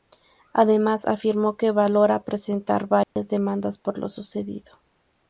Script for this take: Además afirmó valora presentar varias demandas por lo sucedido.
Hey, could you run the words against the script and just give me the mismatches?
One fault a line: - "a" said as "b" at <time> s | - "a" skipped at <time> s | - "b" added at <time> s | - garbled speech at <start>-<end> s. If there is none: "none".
- "que" added at 1.6 s